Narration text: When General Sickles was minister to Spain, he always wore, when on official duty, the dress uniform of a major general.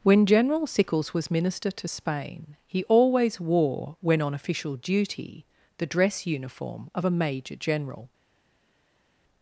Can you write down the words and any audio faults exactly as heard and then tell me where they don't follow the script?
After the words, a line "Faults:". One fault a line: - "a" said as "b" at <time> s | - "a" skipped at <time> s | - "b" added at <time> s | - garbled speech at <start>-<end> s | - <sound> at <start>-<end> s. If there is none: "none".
When General Sickles was minister to Spain, he always wore, when on official duty, the dress uniform of a major general.
Faults:
none